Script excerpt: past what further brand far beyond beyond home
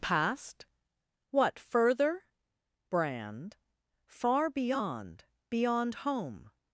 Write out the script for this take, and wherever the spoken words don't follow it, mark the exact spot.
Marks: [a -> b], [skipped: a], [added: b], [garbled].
past what further brand far beyond beyond home